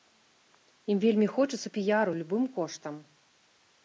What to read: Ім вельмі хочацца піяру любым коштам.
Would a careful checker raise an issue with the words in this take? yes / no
no